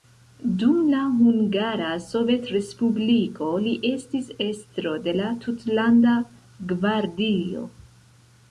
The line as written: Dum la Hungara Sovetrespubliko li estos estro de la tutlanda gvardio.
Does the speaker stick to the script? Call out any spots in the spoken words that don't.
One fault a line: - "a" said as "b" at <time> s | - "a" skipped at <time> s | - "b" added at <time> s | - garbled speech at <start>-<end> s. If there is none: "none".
- "estos" said as "estis" at 3.9 s